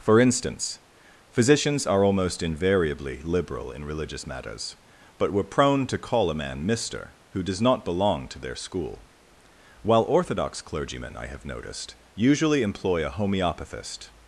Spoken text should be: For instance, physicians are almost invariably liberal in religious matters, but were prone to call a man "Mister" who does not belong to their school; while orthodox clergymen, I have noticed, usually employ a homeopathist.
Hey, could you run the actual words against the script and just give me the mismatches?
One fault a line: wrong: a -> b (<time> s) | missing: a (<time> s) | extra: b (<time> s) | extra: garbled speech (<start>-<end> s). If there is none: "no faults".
no faults